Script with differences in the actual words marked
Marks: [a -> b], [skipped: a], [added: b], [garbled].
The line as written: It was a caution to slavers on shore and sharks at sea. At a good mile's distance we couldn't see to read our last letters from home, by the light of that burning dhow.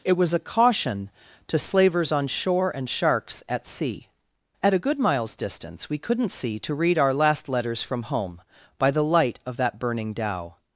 It was a caution to slavers on shore and sharks at sea. At a good mile's distance we couldn't see to read our last letters from home, by the light of that burning dhow.